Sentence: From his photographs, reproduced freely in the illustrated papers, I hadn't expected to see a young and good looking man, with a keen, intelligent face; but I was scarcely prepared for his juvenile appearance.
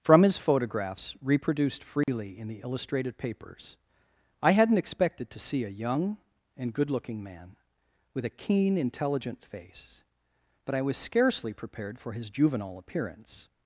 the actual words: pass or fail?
pass